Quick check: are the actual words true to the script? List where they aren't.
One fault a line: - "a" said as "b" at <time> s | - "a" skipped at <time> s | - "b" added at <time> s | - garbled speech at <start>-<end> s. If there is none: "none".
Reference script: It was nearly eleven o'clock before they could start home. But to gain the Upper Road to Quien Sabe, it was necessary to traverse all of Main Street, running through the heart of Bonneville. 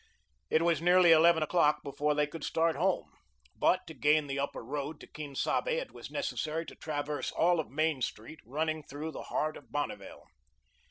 none